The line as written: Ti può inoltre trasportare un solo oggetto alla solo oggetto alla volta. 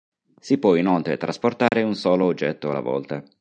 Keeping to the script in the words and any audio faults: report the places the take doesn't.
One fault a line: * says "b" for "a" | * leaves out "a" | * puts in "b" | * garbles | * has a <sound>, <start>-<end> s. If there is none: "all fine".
* says "Si" for "Ti"
* has a dropout, 1.7-1.7 s
* leaves out "solo oggetto alla"